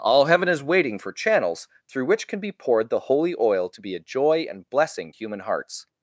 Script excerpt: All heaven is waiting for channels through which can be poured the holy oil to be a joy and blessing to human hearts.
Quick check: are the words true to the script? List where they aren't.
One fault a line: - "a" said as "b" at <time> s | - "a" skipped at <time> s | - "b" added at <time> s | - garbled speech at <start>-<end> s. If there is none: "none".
- "to" skipped at 5.1 s